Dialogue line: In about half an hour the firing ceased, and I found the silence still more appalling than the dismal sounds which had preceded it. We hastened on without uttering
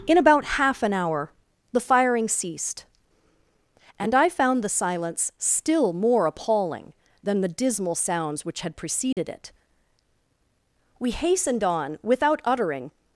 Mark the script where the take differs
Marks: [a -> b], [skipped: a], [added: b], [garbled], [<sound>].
In about half an hour the firing ceased, and I found the silence still more appalling than the dismal sounds which had preceded [dropout] it. We hastened on without uttering